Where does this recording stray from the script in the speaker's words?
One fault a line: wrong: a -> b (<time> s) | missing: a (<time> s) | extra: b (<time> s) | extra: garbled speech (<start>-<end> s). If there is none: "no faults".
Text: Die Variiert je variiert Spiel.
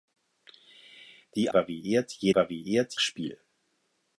no faults